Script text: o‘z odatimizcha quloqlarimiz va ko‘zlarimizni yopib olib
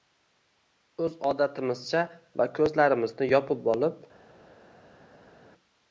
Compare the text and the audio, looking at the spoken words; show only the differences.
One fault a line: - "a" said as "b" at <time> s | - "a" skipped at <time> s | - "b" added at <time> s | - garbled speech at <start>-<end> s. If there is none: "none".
- "quloqlarimiz" skipped at 2.0 s